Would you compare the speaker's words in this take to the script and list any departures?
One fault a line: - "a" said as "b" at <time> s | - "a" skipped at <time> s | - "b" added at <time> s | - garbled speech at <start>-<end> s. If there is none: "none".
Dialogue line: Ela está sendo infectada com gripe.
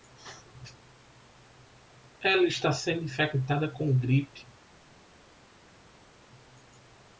none